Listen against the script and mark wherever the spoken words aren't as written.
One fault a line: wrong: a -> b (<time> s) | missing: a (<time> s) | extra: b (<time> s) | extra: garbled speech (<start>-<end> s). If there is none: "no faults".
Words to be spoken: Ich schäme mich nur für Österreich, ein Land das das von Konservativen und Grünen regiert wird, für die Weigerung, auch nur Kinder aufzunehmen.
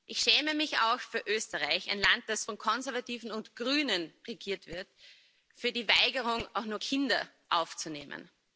wrong: nur -> auch (0.8 s)
missing: das (2.4 s)